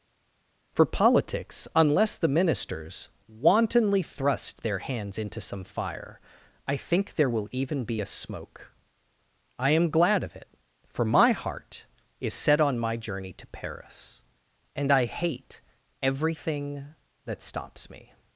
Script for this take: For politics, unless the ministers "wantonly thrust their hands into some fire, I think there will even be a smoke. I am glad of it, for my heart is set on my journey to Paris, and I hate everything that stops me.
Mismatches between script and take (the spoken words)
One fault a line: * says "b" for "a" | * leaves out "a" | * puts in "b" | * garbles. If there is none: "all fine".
all fine